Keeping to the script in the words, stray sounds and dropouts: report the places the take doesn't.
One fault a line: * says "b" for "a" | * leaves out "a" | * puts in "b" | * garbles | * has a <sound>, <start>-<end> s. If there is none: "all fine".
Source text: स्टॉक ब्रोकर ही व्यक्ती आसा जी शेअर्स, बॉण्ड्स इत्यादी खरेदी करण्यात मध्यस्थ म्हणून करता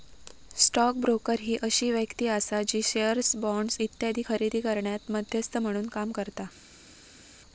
* puts in "अशी"
* puts in "काम"